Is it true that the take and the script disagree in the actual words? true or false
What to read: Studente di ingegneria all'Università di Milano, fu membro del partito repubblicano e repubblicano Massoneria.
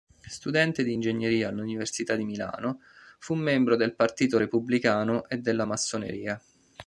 true